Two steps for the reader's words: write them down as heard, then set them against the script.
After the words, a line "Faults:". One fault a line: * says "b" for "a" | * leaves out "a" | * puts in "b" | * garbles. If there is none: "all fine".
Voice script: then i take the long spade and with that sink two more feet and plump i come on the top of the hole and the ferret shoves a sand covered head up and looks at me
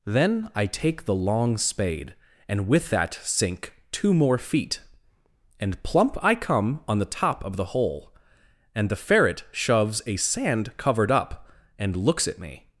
then i take the long spade and with that sink two more feet and plump i come on the top of the hole and the ferret shoves a sand covered up and looks at me
Faults:
* leaves out "head"